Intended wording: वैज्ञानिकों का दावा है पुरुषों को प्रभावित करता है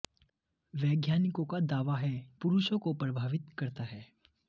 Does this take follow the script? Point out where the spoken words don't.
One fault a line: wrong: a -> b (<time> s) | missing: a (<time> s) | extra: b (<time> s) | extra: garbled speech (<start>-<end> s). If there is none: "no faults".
no faults